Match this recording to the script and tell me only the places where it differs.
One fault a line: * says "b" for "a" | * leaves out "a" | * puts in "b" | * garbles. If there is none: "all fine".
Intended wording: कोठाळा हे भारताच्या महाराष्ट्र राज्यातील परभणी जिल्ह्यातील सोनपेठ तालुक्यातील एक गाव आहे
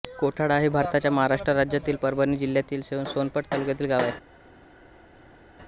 all fine